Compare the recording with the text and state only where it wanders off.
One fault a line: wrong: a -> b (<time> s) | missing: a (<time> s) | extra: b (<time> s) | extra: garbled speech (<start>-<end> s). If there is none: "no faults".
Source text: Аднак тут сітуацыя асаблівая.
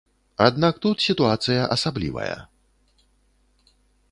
no faults